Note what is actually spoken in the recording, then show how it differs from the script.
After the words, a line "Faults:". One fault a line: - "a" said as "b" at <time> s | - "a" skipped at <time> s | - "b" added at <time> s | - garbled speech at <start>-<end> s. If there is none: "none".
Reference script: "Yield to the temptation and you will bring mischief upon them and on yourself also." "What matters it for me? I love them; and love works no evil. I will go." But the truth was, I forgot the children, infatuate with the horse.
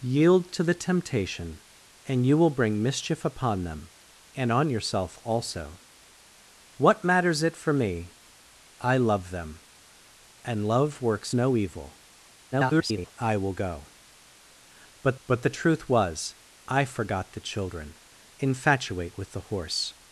"Yield to the temptation and you will bring mischief upon them and on yourself also." "What matters it for me? I love them; and love works no evil. [garbled] I will go." But but the truth was, I forgot the children, infatuate with the horse.
Faults:
- garbled speech at 12.5-13.1 s
- "but" added at 15.3 s